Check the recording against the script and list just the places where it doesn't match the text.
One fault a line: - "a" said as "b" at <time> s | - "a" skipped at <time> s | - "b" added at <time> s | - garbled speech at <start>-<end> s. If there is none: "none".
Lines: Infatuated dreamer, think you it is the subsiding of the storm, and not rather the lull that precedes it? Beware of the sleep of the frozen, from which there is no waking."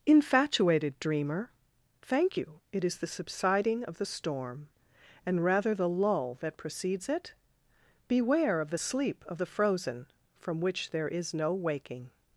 - "think" said as "thank" at 2.0 s
- "not" skipped at 5.4 s